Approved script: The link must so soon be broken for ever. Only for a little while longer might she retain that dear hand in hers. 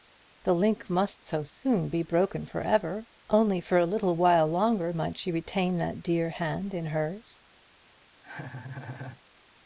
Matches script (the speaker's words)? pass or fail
pass